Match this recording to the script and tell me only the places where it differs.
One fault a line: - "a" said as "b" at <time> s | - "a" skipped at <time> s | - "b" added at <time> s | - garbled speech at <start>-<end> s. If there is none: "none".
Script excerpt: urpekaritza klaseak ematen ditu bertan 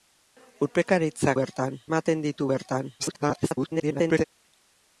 - "klaseak" said as "bertan" at 1.4 s
- garbled speech at 3.0-4.2 s